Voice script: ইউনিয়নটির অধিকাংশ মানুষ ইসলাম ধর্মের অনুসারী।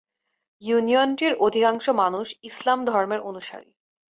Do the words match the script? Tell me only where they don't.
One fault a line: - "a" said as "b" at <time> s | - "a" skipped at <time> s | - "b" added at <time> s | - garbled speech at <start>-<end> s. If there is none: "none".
none